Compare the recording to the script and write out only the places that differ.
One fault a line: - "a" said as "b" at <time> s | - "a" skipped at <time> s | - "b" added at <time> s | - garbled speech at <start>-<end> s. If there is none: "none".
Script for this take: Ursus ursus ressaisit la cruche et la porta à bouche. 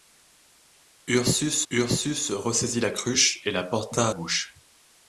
none